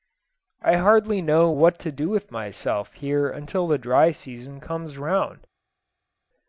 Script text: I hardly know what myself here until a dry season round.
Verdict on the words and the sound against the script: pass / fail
fail